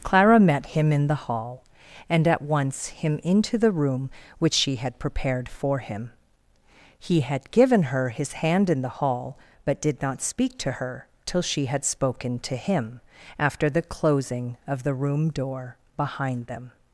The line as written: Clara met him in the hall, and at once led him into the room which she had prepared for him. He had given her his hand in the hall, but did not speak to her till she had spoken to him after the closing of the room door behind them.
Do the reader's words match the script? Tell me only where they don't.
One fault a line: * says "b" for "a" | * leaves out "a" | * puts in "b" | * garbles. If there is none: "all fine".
* leaves out "led"